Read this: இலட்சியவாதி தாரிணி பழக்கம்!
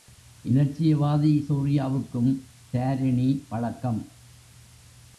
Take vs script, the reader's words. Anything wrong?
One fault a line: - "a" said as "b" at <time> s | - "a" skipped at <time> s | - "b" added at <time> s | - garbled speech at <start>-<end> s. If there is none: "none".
- "சூர்யாவுக்கும்" added at 1.5 s